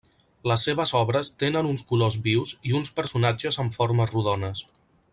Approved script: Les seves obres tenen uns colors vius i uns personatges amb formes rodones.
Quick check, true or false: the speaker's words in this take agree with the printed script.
true